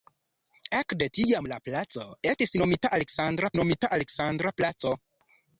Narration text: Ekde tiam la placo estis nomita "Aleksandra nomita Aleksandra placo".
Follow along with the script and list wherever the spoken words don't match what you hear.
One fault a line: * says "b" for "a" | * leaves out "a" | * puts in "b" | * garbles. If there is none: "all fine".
all fine